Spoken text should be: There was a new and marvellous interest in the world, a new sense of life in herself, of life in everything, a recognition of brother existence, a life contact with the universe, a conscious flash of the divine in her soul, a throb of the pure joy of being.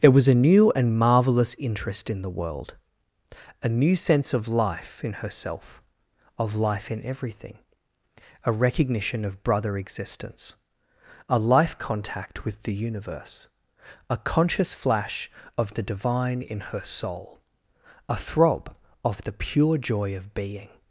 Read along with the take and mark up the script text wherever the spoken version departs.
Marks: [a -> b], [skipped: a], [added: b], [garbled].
There was a new and marvellous interest in the world, a new sense of life in herself, of life in everything, a recognition of brother existence, a life contact with the universe, a conscious flash of the divine in her soul, a throb of the pure joy of being.